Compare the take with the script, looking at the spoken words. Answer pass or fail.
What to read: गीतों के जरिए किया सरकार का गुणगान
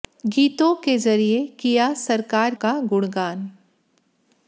pass